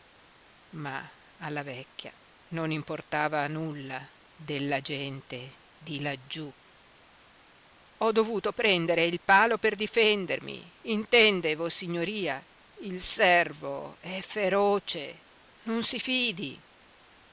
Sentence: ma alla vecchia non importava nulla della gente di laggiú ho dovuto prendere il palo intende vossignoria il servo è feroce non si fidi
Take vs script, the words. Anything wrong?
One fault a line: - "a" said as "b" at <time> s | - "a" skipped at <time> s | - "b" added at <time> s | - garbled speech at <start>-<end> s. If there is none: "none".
- "per difendermi" added at 9.6 s